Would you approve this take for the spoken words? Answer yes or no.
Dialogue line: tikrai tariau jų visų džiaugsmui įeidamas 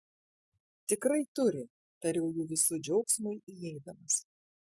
no